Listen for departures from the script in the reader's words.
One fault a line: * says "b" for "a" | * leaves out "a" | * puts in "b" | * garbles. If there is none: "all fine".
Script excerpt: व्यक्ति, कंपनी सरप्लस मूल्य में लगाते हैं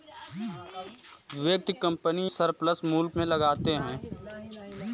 all fine